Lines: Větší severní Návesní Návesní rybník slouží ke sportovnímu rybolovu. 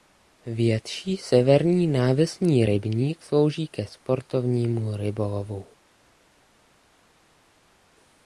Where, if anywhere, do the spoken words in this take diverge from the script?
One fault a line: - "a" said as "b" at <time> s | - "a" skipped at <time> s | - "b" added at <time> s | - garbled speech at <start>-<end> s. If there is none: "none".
- "Návesní" skipped at 2.6 s